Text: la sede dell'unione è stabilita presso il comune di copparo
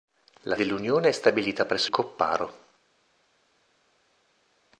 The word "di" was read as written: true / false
false